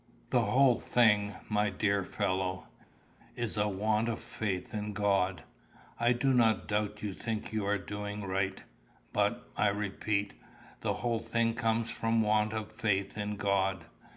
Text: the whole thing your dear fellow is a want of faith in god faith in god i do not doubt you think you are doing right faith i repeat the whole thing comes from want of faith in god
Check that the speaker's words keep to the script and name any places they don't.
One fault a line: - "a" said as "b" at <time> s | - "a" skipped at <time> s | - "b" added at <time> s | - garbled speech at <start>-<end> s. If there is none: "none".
- "your" said as "my" at 1.5 s
- "faith in god" skipped at 5.4 s
- "faith" said as "but" at 9.1 s